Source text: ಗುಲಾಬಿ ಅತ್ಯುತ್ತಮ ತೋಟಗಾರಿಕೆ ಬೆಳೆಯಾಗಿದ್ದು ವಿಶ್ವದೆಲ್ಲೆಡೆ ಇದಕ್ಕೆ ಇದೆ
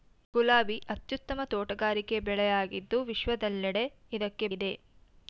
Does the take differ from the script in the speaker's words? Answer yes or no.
no